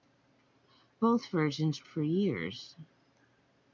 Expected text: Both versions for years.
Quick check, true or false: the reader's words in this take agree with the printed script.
true